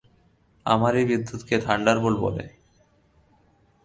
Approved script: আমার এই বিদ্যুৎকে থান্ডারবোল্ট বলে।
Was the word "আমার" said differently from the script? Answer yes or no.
no